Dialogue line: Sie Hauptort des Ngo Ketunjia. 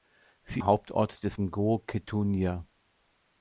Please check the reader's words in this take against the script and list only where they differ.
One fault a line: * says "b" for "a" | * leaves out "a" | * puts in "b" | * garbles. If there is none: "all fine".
all fine